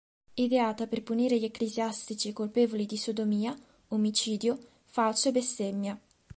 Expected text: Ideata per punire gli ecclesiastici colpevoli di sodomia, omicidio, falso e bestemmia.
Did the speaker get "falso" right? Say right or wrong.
right